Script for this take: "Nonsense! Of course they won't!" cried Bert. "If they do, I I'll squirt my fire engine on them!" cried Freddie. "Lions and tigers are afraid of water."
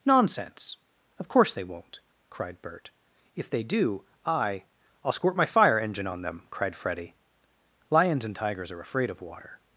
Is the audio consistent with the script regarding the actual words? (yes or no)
yes